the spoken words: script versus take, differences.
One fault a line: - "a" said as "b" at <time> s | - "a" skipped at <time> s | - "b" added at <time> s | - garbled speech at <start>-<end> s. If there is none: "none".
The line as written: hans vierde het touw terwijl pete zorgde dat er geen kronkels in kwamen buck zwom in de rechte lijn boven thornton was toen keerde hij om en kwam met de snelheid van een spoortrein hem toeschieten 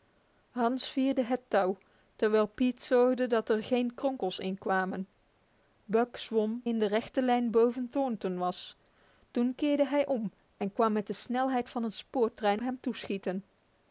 none